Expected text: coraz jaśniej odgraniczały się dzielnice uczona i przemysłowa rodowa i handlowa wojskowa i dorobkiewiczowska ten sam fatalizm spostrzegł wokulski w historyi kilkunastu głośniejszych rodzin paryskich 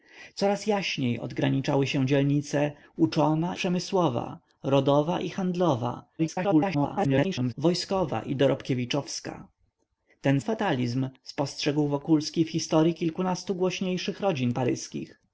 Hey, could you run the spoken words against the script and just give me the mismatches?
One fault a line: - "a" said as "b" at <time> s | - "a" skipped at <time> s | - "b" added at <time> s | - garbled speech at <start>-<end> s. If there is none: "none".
- "i" skipped at 3.6 s
- garbled speech at 6.2-7.5 s
- "sam" skipped at 10.4 s